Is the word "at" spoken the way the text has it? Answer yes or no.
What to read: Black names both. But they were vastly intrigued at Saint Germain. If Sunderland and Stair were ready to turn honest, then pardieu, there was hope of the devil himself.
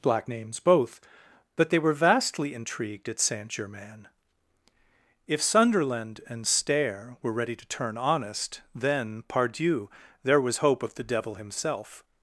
yes